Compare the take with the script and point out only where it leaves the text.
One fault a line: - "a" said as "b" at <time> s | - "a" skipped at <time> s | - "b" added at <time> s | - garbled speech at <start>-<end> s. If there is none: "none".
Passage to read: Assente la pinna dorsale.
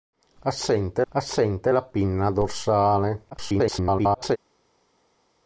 - "assente" added at 1.1 s
- garbled speech at 3.3-4.4 s